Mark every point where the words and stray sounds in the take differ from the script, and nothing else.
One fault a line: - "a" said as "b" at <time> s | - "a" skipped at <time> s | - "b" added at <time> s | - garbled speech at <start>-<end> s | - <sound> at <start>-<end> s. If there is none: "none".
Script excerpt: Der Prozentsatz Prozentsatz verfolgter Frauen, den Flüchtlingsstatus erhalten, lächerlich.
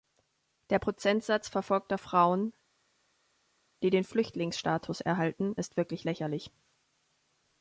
- "Prozentsatz" skipped at 1.5 s
- "die" added at 3.8 s
- "ist wirklich" added at 5.5 s